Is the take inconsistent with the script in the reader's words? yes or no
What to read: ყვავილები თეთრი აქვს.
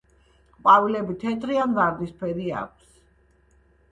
yes